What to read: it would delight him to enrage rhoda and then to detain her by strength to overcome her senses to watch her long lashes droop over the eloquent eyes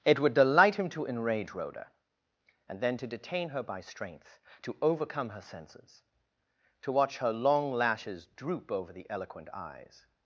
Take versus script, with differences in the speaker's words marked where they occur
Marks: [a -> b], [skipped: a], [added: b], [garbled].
it would delight him to enrage rhoda and then to detain her by strength to overcome her senses to watch her long lashes droop over the eloquent eyes